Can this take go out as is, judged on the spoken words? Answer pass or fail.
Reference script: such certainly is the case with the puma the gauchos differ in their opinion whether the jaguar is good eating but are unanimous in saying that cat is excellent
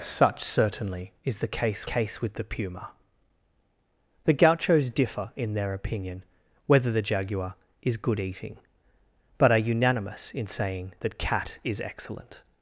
fail